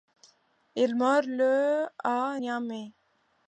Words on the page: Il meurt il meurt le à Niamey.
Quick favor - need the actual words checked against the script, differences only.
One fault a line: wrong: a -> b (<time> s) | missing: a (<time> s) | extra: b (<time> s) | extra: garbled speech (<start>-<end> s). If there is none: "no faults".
missing: il meurt (1.3 s)